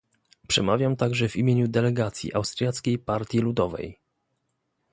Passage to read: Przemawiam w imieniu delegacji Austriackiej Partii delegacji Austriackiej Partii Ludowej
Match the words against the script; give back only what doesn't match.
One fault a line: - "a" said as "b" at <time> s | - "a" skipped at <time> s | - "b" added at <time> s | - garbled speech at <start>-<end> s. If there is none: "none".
- "także" added at 0.9 s
- "delegacji Austriackiej Partii" skipped at 3.4 s